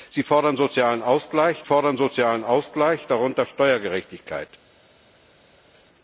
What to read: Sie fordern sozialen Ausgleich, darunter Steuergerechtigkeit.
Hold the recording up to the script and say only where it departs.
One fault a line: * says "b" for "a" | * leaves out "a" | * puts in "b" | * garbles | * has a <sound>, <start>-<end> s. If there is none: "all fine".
* puts in "fordern sozialen Ausgleich"